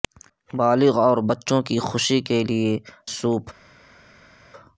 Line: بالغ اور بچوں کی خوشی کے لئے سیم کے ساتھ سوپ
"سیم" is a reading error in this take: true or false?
true